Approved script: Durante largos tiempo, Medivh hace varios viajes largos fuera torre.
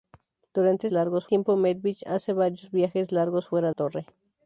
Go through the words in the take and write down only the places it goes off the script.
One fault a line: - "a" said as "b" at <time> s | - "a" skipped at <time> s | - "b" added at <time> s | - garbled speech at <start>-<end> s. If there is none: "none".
none